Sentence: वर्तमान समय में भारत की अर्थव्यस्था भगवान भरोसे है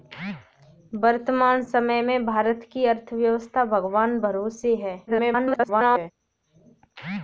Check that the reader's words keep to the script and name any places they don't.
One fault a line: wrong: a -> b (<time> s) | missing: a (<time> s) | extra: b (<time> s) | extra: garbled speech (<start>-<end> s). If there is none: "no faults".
extra: garbled speech (5.1-6.1 s)